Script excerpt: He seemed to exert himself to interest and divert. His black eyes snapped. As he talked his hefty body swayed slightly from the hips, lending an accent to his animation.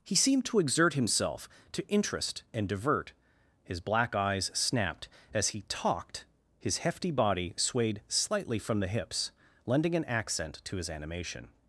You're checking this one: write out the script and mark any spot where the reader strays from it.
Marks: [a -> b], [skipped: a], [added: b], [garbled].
He seemed to exert himself to interest and divert. His black eyes snapped. As he talked his hefty body swayed slightly from the hips, lending an accent to his animation.